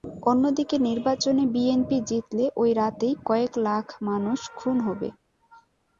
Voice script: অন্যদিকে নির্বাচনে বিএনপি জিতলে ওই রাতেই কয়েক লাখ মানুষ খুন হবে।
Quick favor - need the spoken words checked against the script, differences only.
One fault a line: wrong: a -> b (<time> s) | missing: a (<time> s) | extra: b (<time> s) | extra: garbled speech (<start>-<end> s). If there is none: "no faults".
no faults